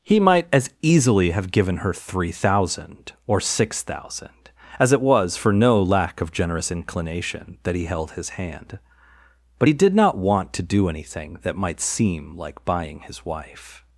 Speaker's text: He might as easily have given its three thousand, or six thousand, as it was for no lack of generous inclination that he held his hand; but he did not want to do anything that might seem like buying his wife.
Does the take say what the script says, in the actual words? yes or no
no